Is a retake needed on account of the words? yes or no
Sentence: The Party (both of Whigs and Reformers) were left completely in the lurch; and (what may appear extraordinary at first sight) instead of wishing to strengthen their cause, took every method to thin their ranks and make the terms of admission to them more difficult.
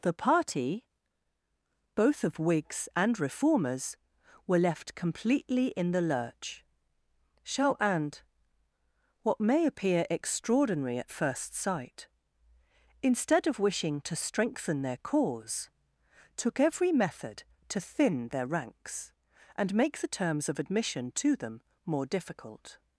yes